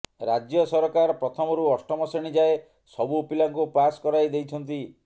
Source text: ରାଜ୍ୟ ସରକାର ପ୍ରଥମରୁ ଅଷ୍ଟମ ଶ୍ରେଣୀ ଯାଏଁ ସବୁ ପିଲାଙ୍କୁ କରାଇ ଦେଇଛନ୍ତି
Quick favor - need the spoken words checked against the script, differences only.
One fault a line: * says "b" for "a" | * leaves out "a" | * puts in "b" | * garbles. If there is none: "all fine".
* puts in "ପାସ୍"